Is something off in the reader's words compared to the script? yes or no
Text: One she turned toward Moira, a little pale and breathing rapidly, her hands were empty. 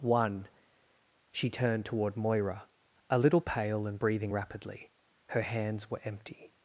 no